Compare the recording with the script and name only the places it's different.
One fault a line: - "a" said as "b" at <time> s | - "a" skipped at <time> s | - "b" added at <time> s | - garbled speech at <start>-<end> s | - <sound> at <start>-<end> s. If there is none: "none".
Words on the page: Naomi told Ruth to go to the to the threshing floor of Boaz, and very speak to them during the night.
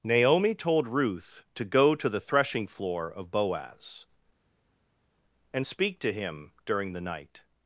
- "to the" skipped at 2.2 s
- "very" skipped at 5.7 s
- "them" said as "him" at 6.1 s